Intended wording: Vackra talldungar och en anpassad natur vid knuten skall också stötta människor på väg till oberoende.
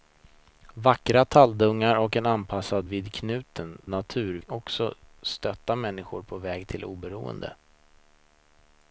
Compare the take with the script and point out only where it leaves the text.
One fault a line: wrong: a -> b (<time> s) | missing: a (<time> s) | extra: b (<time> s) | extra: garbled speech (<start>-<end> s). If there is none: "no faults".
missing: natur (2.9 s)
wrong: skall -> natur (3.9 s)